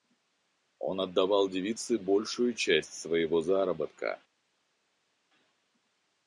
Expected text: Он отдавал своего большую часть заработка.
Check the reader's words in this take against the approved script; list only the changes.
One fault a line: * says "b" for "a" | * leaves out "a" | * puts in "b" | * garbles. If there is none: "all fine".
* says "девице" for "своего"
* puts in "своего"